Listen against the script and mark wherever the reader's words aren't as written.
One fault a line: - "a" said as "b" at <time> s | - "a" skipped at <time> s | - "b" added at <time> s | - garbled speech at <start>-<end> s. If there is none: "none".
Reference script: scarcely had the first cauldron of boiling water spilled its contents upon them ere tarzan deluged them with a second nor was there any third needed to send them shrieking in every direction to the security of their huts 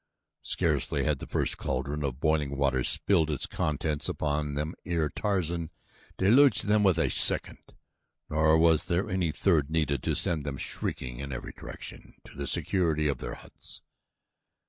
none